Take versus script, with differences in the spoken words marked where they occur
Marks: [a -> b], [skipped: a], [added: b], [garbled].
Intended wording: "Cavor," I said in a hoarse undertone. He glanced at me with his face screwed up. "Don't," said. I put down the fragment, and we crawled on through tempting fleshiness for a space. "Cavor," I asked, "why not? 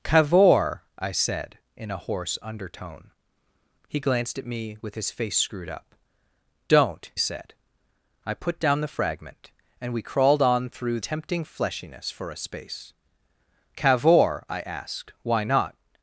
"Cavor," I said in a hoarse undertone. He glanced at me with his face screwed up. "Don't," said. I put down the fragment, and we crawled on through tempting fleshiness for a space. "Cavor," I asked, "why not?